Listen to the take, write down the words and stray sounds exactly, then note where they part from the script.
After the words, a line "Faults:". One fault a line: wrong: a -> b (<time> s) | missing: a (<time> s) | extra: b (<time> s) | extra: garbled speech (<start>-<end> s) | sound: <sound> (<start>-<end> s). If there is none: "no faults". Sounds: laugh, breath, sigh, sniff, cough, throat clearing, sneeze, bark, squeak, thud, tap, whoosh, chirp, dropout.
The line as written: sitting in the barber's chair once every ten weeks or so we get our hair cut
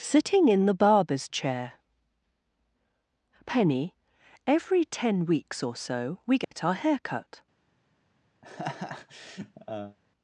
sitting in the barber's chair penny every ten weeks or so we get our hair cut
Faults:
wrong: once -> penny (3.5 s)
sound: dropout (6.4-6.5 s)
sound: laugh (8.4-10.0 s)